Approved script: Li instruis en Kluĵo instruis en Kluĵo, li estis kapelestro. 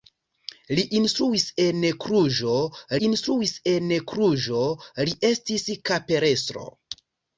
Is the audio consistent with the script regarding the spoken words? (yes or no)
yes